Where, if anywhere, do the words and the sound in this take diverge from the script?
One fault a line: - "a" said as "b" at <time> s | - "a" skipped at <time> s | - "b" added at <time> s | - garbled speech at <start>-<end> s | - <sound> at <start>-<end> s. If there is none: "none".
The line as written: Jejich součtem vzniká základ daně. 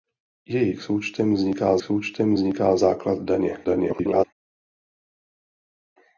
- "součtem vzniká" added at 1.8 s
- garbled speech at 3.6-4.2 s